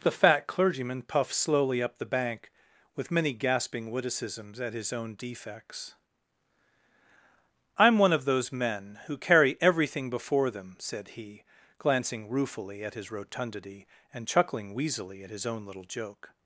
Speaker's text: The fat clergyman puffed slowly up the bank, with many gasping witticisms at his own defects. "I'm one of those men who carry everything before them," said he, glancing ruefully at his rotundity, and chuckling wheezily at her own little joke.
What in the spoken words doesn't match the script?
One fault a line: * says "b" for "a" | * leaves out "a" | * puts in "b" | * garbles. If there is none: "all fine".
* says "his" for "her"